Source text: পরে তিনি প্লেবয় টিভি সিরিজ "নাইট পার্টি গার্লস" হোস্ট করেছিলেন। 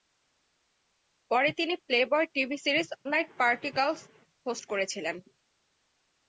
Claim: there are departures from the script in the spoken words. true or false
false